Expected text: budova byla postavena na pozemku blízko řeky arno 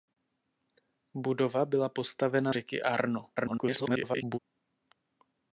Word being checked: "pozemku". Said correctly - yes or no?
no